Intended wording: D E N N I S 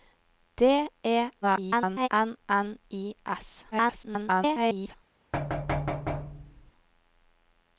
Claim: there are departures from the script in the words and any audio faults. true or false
true